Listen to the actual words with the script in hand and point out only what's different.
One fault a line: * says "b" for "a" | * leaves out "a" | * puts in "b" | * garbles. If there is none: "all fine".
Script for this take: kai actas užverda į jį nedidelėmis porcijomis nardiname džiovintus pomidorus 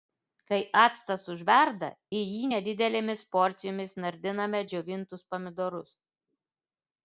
all fine